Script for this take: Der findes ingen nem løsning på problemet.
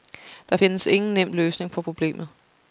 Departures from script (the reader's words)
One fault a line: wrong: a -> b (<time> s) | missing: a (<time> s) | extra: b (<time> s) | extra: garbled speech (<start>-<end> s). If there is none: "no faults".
no faults